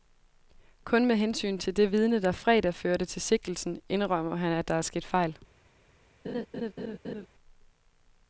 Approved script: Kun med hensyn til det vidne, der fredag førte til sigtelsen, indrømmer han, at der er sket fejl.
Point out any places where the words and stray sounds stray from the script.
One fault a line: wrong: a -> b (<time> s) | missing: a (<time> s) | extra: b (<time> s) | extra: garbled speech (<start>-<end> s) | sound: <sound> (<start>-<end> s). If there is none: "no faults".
sound: laugh (6.2-7.3 s)